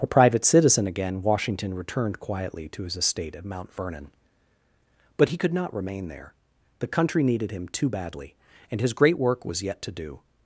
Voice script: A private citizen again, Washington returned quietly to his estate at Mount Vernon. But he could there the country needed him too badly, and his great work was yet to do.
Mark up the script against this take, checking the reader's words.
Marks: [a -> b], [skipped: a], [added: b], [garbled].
A private citizen again, Washington returned quietly to his estate at Mount Vernon. But he could [added: not remain] there the country needed him too badly, and his great work was yet to do.